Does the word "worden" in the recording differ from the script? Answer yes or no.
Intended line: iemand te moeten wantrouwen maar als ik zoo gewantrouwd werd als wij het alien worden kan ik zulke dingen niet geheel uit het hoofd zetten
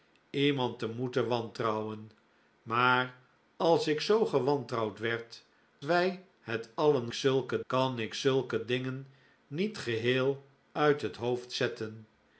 yes